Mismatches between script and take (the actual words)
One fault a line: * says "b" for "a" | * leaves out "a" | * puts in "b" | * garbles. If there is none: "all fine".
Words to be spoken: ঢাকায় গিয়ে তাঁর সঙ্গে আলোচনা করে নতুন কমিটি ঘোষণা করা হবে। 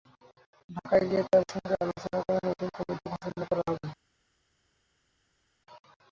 all fine